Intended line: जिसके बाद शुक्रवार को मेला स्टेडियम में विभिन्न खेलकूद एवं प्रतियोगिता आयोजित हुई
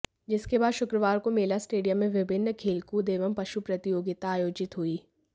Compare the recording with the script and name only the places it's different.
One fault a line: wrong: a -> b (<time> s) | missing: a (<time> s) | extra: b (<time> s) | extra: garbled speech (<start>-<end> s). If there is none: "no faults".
extra: पशु (3.3 s)